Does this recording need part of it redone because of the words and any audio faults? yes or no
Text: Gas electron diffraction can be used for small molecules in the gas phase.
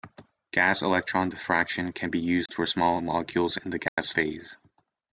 yes